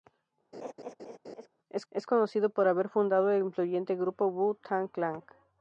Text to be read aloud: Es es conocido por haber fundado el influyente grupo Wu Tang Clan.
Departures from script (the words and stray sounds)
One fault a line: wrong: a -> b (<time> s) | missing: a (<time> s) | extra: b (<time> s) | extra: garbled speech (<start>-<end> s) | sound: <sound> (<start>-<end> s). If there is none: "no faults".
sound: laugh (0.5-1.5 s)